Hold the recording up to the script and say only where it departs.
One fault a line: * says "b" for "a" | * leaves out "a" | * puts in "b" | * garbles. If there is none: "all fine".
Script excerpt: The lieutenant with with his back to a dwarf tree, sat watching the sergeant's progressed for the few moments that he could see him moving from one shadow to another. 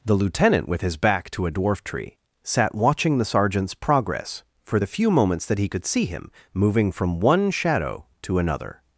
* leaves out "with"
* says "progress" for "progressed"